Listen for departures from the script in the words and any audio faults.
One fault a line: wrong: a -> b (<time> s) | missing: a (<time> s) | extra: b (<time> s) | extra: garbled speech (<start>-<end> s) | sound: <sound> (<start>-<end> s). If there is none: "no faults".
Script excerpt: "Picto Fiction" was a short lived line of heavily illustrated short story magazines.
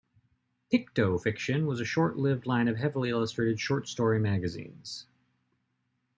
no faults